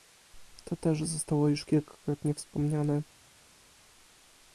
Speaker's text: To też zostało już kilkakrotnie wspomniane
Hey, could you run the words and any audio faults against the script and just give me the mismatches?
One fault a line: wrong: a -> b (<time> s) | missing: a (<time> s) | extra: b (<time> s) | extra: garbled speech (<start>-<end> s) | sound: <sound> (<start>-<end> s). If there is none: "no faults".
no faults